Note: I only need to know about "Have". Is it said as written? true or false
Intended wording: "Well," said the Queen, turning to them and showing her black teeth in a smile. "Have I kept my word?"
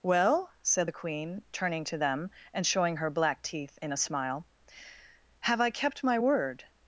true